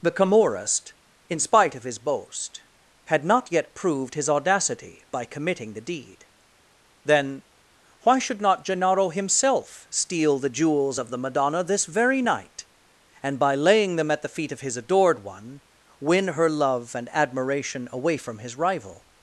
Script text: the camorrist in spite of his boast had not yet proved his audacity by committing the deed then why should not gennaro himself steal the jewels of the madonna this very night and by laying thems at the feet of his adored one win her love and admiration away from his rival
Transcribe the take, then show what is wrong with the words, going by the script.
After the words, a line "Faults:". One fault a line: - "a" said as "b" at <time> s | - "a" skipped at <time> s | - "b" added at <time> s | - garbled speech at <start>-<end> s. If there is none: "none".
the camorrist in spite of his boast had not yet proved his audacity by committing the deed then why should not gennaro himself steal the jewels of the madonna this very night and by laying them at the feet of his adored one win her love and admiration away from his rival
Faults:
- "thems" said as "them" at 14.0 s